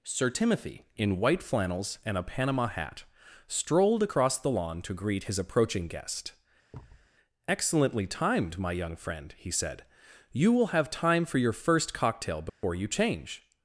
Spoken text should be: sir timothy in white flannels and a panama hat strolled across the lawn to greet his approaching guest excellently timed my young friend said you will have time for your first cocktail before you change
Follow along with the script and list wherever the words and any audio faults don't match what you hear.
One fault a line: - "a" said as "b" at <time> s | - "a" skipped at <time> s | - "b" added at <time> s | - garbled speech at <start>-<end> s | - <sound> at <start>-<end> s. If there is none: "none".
- thud at 6.7-7.1 s
- "he" added at 9.4 s
- dropout at 12.5-12.6 s